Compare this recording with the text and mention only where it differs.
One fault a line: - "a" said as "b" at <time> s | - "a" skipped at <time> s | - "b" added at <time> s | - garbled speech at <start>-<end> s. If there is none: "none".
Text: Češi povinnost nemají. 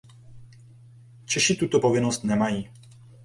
- "tuto" added at 1.6 s